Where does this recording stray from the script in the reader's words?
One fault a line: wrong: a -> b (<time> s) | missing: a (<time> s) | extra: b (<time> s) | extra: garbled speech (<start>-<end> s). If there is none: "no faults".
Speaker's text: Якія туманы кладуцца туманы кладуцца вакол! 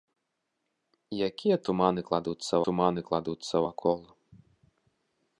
no faults